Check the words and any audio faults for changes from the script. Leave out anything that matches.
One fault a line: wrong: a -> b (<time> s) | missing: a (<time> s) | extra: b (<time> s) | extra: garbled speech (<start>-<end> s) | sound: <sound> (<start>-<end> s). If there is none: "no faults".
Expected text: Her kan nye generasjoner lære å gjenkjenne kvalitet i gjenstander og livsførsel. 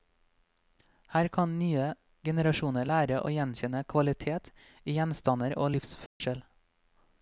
sound: dropout (6.1-6.2 s)